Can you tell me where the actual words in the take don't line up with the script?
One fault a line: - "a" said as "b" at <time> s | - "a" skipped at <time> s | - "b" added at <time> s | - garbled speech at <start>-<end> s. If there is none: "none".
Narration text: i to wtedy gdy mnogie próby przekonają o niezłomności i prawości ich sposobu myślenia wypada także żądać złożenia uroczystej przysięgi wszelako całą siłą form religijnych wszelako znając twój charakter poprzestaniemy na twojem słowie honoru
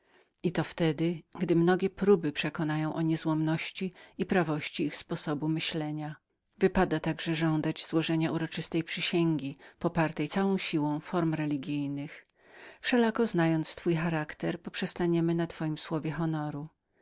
- "wszelako" said as "popartej" at 9.8 s